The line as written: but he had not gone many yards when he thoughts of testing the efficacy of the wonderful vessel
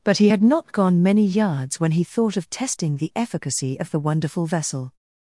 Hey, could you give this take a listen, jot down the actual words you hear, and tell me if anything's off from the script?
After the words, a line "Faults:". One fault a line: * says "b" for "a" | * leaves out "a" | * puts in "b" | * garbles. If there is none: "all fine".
but he had not gone many yards when he thought of testing the efficacy of the wonderful vessel
Faults:
* says "thought" for "thoughts"